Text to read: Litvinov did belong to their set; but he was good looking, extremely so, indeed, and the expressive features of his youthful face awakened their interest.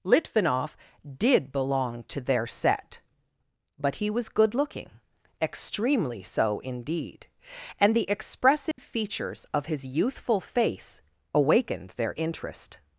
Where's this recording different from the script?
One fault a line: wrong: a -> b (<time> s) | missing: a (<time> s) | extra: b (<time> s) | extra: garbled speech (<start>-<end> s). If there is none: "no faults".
no faults